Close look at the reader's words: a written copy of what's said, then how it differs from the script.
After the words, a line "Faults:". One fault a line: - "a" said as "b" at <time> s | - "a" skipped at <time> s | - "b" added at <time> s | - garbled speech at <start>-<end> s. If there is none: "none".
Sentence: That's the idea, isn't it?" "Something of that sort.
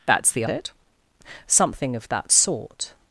That's the it?" "Something of that sort.
Faults:
- "idea isn't" skipped at 0.5 s